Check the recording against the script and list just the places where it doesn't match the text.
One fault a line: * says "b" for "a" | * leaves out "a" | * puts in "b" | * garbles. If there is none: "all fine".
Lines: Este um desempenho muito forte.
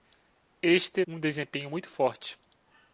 all fine